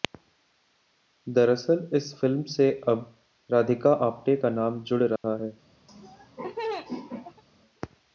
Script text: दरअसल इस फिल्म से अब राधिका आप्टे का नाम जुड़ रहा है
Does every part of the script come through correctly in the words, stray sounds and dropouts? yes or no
no